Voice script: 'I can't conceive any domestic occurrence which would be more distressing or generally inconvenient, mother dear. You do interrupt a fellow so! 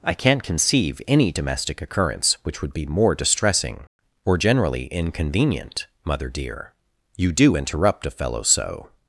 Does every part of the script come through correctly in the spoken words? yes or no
yes